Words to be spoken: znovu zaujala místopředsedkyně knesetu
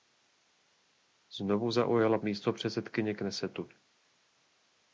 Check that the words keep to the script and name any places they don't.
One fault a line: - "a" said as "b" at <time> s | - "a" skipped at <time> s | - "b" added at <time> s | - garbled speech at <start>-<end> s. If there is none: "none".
none